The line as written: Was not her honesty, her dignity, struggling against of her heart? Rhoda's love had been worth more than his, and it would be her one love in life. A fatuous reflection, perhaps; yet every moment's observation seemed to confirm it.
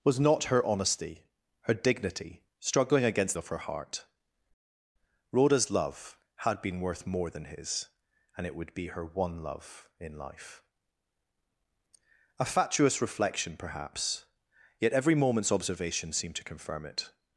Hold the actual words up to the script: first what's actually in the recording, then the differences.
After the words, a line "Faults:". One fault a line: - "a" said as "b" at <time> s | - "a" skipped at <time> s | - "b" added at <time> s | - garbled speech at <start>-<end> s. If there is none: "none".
Was not her honesty, her dignity, struggling against of her heart? Rhoda's love had been worth more than his, and it would be her one love in life. A fatuous reflection, perhaps; yet every moment's observation seemed to confirm it.
Faults:
none